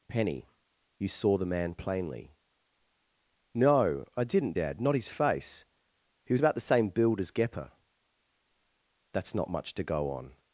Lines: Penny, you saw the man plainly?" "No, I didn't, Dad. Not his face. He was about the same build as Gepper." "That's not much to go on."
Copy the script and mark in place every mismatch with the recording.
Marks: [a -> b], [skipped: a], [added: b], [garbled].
Penny, you saw the man plainly?" "No, I didn't, Dad. Not his face. He was about the same build as Gepper." "That's not much to go on."